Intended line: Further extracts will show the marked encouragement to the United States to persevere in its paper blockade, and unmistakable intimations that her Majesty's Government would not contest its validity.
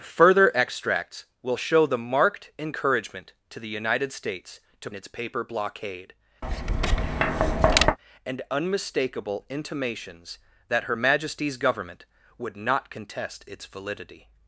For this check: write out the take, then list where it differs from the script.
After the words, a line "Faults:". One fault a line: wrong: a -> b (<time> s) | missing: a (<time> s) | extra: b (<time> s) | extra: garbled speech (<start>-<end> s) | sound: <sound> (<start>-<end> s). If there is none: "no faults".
Further extracts will show the marked encouragement to the United States to its paper blockade, and unmistakable intimations that her Majesty's Government would not contest its validity.
Faults:
missing: persevere in (4.9 s)
sound: tap (6.4-8.0 s)